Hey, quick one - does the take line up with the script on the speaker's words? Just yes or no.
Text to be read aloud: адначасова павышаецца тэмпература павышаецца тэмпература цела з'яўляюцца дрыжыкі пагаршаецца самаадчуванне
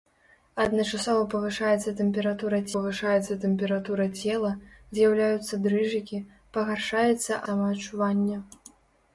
yes